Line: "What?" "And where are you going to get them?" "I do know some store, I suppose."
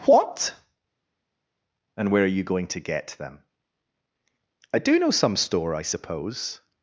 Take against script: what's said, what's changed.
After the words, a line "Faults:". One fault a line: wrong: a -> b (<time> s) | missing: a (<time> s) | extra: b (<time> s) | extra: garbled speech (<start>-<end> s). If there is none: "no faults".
"What?" "And where are you going to get them?" "I do know some store, I suppose."
Faults:
no faults